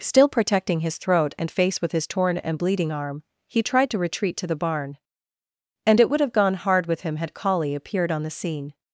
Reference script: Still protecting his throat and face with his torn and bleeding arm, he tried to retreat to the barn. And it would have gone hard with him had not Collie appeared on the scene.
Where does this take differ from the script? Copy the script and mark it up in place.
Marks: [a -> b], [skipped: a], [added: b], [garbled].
Still protecting his throat and face with his torn and bleeding arm, he tried to retreat to the barn. And it would have gone hard with him had [skipped: not] Collie appeared on the scene.